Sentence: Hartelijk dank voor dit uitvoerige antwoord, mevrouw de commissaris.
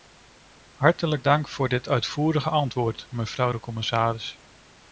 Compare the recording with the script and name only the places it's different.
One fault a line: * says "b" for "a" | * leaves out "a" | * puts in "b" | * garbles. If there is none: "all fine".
all fine